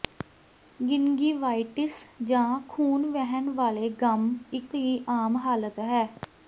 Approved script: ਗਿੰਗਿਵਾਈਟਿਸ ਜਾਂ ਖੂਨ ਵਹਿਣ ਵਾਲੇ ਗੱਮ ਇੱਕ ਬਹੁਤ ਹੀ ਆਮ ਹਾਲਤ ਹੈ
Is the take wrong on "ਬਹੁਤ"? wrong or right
wrong